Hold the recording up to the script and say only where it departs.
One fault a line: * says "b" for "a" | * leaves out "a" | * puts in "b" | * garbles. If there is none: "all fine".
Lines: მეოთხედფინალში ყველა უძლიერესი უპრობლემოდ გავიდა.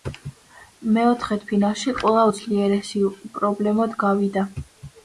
all fine